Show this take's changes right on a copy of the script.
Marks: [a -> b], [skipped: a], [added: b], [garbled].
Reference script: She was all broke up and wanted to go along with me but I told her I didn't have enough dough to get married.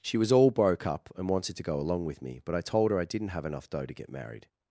She was all broke up and wanted to go along with me but I told her I didn't have enough dough to get married.